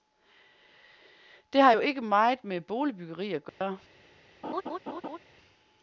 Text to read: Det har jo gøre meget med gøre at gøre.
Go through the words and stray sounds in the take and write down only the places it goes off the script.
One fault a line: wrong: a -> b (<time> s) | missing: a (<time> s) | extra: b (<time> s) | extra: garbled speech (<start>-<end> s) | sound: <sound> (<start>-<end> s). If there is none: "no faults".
wrong: gøre -> ikke (1.8 s)
wrong: gøre -> boligbyggeri (2.6 s)
sound: dropout (3.5-3.6 s)
sound: laugh (4.4-5.2 s)